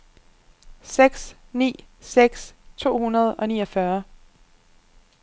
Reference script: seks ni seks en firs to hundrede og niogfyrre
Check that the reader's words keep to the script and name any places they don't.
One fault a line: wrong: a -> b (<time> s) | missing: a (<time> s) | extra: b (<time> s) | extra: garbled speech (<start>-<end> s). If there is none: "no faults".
missing: en firs (2.5 s)